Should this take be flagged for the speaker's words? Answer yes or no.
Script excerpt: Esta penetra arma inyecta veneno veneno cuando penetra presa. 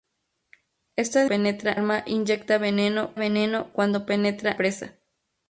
no